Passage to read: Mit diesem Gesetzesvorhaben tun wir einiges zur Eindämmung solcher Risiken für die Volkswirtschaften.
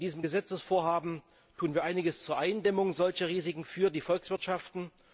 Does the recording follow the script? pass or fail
pass